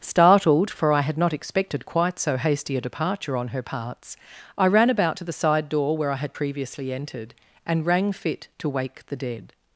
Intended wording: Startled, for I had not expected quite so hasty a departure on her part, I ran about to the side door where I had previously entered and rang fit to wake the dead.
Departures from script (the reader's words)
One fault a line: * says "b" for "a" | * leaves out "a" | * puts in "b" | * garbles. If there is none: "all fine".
* says "parts" for "part"